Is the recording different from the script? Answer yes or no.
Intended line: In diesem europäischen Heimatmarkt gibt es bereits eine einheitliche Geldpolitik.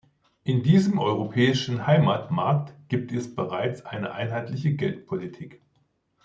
no